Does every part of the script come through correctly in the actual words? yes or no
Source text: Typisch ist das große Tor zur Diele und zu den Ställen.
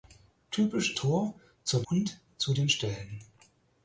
no